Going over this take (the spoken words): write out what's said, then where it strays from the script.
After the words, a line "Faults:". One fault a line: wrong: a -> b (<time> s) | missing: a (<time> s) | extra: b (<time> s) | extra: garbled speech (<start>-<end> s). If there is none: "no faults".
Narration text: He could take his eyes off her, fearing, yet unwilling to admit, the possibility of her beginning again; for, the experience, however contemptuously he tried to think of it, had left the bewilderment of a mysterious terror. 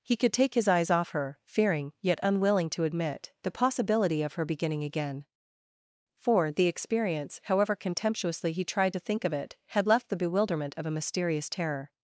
He could take his eyes off her, fearing, yet unwilling to admit, the possibility of her beginning again; for, the experience, however contemptuously he tried to think of it, had left the bewilderment of a mysterious terror.
Faults:
no faults